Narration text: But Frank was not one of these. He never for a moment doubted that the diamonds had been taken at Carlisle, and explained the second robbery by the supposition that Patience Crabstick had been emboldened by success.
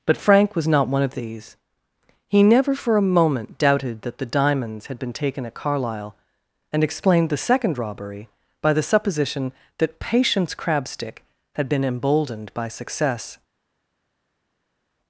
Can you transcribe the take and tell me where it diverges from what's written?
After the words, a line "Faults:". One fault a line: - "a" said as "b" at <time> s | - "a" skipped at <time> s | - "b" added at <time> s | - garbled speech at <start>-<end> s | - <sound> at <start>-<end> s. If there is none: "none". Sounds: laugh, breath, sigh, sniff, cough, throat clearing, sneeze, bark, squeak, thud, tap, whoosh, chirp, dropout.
But Frank was not one of these. He never for a moment doubted that the diamonds had been taken at Carlisle, and explained the second robbery by the supposition that Patience Crabstick had been emboldened by success.
Faults:
none